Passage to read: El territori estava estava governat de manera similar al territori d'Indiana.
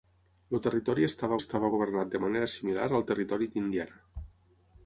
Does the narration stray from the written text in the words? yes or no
no